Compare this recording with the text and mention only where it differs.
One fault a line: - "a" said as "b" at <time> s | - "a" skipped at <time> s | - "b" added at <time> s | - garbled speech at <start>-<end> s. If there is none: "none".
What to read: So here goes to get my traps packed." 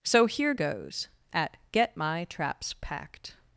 - "to" said as "at" at 1.3 s